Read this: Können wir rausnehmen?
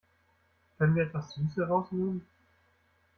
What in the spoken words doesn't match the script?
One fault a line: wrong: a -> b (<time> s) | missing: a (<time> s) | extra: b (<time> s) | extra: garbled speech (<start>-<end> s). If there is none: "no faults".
extra: etwas Süße (1.0 s)